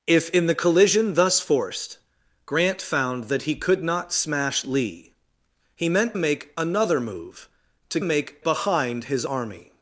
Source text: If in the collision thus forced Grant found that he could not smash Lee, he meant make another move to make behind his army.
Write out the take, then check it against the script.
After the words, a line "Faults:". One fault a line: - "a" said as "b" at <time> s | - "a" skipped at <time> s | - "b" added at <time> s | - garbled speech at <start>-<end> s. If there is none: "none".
If in the collision thus forced Grant found that he could not smash Lee, he meant make another move to make behind his army.
Faults:
none